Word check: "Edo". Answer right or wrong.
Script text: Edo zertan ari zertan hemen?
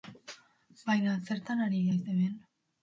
wrong